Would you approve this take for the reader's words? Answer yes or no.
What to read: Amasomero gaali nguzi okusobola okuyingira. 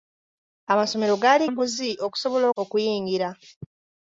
yes